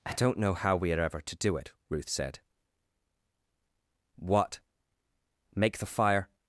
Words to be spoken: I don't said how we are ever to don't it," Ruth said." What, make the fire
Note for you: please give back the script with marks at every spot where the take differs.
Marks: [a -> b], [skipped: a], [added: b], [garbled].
I don't [said -> know] how we are ever to [don't -> do] it," Ruth said." What, make the fire